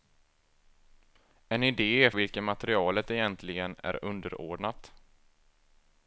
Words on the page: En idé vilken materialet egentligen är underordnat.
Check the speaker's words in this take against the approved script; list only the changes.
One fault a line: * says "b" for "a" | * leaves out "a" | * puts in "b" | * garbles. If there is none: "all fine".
all fine